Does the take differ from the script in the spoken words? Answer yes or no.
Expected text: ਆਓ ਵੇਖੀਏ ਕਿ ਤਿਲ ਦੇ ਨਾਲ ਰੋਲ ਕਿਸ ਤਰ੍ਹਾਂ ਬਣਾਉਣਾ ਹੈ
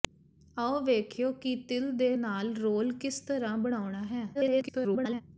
yes